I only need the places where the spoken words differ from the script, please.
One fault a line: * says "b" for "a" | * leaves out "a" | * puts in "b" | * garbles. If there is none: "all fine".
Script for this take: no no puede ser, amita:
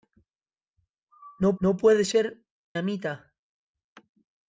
all fine